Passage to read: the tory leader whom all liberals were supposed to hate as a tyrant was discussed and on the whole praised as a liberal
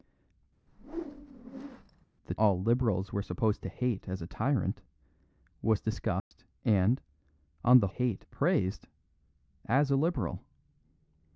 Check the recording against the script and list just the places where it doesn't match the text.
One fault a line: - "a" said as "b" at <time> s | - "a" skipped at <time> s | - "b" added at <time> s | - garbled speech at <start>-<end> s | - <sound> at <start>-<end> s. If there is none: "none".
- whoosh at 0.7-2.1 s
- "tory leader whom" skipped at 2.3 s
- dropout at 6.2-6.3 s
- "whole" said as "hate" at 7.9 s